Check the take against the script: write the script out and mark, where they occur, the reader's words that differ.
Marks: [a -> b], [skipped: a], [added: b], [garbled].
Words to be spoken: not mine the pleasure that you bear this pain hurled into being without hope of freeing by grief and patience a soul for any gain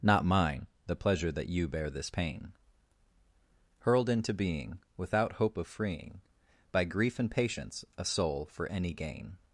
not mine the pleasure that you bear this pain hurled into being without hope of freeing by grief and patience a soul for any gain